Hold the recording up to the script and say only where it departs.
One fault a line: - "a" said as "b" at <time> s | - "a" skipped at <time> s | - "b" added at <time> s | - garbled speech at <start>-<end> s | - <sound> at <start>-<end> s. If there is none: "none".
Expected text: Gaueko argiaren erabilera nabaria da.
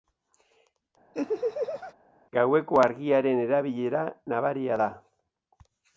- laugh at 1.1-1.9 s